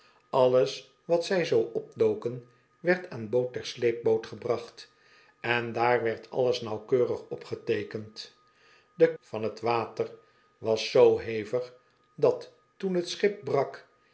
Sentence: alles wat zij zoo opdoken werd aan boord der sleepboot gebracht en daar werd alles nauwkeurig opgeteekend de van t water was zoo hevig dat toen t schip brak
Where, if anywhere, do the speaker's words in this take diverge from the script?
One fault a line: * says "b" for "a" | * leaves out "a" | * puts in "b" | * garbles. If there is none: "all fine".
all fine